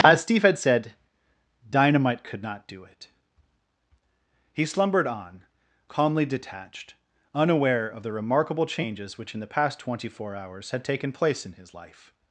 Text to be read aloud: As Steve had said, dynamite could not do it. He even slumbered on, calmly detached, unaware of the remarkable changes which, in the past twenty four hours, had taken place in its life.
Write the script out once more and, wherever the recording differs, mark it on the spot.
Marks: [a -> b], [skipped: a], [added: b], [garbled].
As Steve had said, dynamite could not do it. He [skipped: even] slumbered on, calmly detached, unaware of the remarkable changes which, in the past twenty four hours, had taken place in [its -> his] life.